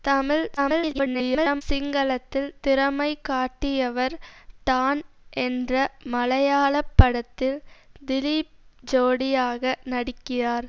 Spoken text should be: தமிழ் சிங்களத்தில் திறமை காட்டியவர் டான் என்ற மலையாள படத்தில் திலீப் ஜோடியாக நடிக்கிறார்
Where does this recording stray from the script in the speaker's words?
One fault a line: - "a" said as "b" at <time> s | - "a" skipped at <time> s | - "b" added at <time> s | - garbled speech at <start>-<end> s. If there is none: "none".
- garbled speech at 0.6-1.6 s